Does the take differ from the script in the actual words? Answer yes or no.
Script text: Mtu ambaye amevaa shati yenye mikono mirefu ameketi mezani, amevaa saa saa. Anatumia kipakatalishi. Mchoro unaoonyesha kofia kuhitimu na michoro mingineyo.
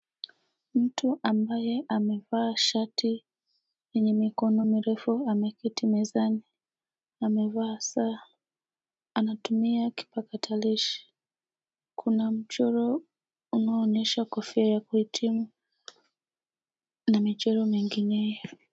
yes